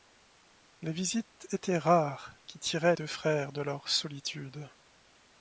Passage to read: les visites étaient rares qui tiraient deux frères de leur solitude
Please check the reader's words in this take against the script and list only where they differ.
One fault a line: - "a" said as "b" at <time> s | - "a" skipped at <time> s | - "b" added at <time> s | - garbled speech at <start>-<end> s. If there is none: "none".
none